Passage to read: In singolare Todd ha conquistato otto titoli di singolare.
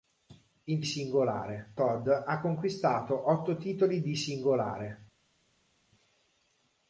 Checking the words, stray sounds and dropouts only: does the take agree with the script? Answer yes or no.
yes